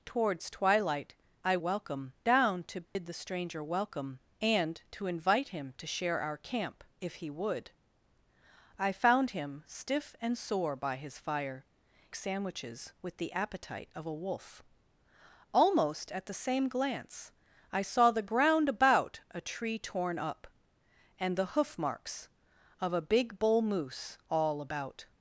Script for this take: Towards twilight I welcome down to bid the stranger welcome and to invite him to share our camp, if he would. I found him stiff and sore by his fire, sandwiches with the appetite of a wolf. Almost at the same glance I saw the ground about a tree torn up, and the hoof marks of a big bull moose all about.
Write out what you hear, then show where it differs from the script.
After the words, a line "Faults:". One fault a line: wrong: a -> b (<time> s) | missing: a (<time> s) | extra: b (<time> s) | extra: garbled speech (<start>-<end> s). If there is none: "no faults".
Towards twilight I welcome down to bid the stranger welcome and to invite him to share our camp, if he would. I found him stiff and sore by his fire, sandwiches with the appetite of a wolf. Almost at the same glance I saw the ground about a tree torn up, and the hoof marks of a big bull moose all about.
Faults:
no faults